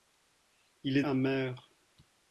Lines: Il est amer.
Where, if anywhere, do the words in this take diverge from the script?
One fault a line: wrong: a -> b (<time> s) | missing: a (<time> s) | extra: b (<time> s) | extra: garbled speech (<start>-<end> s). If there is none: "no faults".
no faults